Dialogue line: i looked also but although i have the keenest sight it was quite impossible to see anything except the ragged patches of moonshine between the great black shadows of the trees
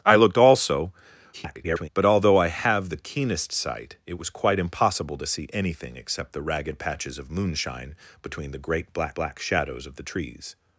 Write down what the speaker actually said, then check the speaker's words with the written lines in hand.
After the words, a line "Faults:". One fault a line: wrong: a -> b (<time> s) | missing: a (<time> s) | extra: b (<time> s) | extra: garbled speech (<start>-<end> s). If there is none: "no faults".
i looked also [garbled] but although i have the keenest sight it was quite impossible to see anything except the ragged patches of moonshine between the great black black shadows of the trees
Faults:
extra: garbled speech (1.3-1.9 s)
extra: black (9.1 s)